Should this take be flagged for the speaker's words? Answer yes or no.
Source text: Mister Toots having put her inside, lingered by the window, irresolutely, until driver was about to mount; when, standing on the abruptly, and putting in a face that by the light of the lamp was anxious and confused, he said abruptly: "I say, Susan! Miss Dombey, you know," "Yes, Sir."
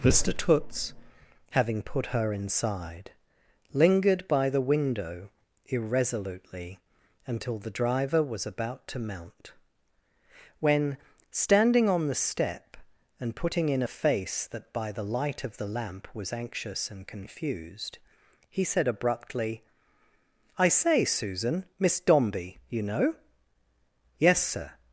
yes